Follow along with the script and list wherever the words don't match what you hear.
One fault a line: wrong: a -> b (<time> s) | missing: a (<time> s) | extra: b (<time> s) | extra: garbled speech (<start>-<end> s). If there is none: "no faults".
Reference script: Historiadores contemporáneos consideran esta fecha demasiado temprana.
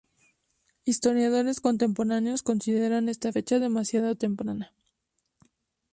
no faults